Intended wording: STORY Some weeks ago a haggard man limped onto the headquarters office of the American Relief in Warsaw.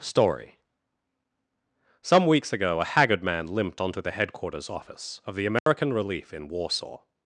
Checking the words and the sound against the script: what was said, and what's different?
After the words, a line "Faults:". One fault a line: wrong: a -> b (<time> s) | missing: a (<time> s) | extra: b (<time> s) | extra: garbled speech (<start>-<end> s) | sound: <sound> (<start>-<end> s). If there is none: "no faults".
STORY Some weeks ago a haggard man limped onto the headquarters office of the American Relief in Warsaw.
Faults:
sound: dropout (5.6-5.7 s)